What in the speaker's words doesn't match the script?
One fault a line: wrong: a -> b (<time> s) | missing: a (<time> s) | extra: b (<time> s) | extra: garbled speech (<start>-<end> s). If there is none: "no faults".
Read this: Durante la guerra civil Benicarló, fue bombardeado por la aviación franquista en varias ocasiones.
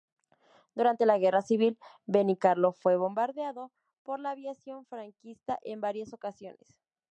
no faults